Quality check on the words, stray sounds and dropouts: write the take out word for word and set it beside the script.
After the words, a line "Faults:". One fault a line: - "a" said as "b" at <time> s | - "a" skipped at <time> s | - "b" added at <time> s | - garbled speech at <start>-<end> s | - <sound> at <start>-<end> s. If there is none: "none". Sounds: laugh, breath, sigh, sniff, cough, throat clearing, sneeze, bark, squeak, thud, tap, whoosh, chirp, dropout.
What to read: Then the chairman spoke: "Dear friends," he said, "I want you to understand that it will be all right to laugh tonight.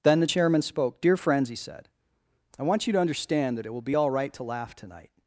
Then the chairman spoke: "Dear friends," he said, "I want you to understand that it will be all right to laugh tonight.
Faults:
none